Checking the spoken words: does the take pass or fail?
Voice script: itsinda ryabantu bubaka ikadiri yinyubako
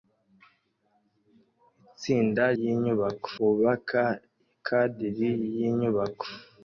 fail